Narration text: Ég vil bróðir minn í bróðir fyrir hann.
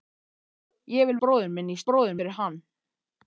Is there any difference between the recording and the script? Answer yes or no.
no